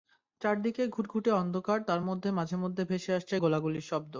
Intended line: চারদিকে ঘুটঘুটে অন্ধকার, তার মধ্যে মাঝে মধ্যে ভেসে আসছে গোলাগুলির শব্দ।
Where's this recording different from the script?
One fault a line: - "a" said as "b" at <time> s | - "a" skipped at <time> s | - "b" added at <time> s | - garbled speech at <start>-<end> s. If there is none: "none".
none